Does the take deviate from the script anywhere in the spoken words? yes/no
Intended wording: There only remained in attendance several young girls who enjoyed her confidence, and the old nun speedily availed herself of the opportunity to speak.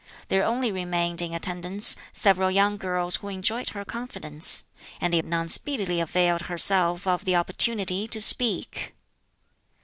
yes